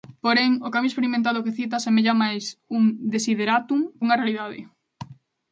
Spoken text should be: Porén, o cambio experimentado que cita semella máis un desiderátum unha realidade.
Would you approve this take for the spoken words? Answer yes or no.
yes